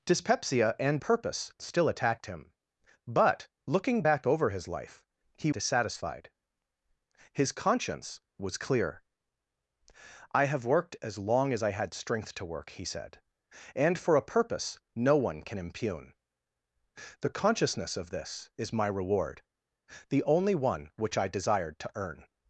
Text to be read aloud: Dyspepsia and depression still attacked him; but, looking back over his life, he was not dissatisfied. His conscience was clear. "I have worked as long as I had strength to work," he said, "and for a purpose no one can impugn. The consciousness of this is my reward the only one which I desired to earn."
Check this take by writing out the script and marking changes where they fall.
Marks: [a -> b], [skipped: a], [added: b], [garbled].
Dyspepsia and [depression -> purpose] still attacked him; but, looking back over his life, he [skipped: was not] dissatisfied. His conscience was clear. "I have worked as long as I had strength to work," he said, "and for a purpose no one can impugn. The consciousness of this is my reward the only one which I desired to earn."